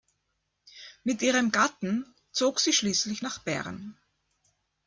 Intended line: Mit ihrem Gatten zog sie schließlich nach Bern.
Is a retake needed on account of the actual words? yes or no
no